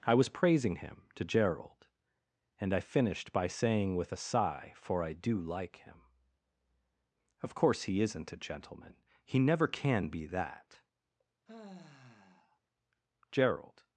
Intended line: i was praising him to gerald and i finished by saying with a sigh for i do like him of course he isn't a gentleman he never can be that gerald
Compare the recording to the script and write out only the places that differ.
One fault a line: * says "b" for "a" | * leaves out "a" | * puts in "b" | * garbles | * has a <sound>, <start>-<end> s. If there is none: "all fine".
* has a sigh, 11.5-12.6 s